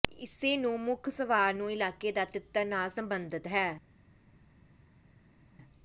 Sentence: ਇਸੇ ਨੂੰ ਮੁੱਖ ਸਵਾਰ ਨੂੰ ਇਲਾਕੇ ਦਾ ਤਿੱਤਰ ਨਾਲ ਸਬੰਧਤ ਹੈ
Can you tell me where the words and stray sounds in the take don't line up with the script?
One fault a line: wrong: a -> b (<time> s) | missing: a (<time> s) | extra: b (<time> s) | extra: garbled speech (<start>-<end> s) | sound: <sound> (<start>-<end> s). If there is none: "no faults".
no faults